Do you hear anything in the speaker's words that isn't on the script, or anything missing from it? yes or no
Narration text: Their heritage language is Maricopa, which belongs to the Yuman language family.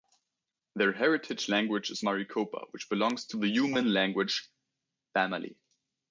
no